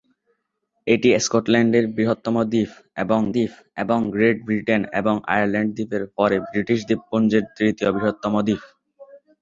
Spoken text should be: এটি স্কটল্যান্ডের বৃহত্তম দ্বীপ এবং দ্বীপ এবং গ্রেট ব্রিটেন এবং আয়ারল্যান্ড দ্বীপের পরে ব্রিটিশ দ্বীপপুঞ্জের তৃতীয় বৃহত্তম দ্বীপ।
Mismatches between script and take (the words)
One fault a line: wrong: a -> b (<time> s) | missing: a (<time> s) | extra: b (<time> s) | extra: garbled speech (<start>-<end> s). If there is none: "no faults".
no faults